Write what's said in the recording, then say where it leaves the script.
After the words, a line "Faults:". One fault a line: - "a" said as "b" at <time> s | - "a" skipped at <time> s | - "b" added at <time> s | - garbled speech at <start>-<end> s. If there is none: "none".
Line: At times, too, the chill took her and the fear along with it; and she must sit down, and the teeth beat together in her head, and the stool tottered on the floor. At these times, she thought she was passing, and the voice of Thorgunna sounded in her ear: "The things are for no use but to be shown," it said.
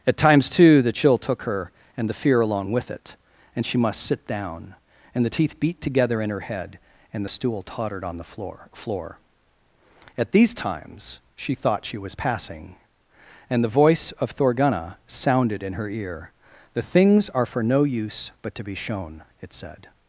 At times, too, the chill took her and the fear along with it; and she must sit down, and the teeth beat together in her head, and the stool tottered on the floor floor. At these times, she thought she was passing, and the voice of Thorgunna sounded in her ear: "The things are for no use but to be shown," it said.
Faults:
- "floor" added at 8.7 s